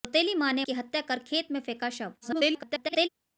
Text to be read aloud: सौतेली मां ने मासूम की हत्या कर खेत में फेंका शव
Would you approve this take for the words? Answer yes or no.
no